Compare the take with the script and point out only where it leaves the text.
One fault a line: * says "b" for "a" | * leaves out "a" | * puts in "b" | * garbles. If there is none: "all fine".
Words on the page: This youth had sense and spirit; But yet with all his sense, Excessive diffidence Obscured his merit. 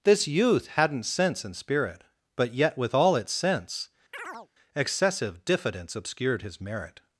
* says "hadn't" for "had"
* says "its" for "his"